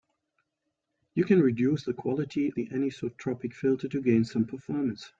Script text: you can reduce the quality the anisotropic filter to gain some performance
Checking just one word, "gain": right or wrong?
right